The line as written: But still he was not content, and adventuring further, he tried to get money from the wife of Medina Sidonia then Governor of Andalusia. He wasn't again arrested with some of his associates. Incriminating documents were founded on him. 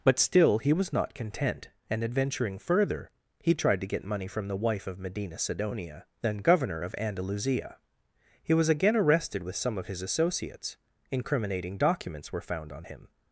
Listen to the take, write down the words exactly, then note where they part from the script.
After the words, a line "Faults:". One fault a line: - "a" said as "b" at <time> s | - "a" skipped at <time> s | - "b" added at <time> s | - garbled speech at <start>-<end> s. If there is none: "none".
But still he was not content, and adventuring further, he tried to get money from the wife of Medina Sidonia then Governor of Andalusia. He was again arrested with some of his associates. Incriminating documents were found on him.
Faults:
- "wasn't" said as "was" at 8.5 s
- "founded" said as "found" at 12.4 s